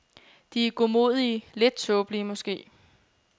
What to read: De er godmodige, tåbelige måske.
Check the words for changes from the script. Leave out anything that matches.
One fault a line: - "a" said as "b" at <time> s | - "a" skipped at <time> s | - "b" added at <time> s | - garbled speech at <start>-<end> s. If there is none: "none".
- "lidt" added at 1.5 s